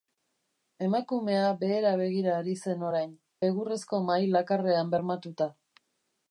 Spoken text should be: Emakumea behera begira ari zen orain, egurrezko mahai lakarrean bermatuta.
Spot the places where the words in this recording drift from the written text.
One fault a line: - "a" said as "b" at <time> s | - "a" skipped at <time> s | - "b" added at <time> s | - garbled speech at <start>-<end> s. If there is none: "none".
none